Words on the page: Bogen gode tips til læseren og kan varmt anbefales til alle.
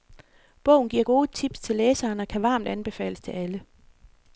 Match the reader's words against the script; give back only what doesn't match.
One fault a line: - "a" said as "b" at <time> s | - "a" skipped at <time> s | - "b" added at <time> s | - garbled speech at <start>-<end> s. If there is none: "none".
- "giver" added at 0.9 s